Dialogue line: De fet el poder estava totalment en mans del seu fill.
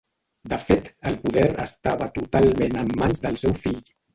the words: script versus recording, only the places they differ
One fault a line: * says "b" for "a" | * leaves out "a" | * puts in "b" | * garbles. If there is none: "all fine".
all fine